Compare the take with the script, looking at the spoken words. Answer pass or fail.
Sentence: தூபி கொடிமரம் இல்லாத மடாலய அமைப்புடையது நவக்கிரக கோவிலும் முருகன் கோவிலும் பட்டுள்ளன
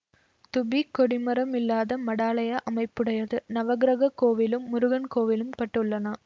pass